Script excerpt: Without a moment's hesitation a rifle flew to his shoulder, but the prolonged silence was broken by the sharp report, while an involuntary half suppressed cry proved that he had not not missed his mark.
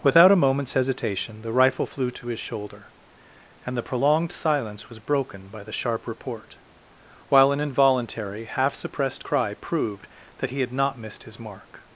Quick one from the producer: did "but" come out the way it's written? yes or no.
no